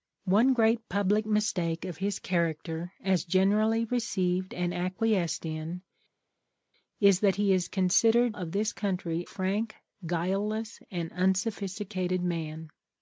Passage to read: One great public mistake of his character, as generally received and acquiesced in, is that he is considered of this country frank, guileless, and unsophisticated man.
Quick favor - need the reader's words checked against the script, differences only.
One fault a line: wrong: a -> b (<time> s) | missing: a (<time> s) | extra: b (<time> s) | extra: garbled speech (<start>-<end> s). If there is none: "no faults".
no faults